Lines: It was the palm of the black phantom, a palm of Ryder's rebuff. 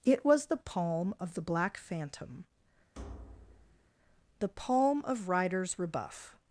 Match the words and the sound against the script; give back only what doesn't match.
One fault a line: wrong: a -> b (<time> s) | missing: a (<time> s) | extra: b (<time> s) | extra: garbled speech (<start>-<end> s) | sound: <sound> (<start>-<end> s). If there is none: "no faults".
sound: thud (2.9-3.9 s)
wrong: a -> the (4.4 s)